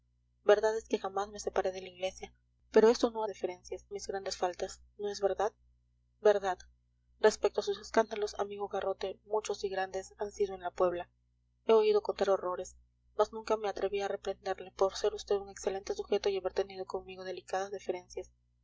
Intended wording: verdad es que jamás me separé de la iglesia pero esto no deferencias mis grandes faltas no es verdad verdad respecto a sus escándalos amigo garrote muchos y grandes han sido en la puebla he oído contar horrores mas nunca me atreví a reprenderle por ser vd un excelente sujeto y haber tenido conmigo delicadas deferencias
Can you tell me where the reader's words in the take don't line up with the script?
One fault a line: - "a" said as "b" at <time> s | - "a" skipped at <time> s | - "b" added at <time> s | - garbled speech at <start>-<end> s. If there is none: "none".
none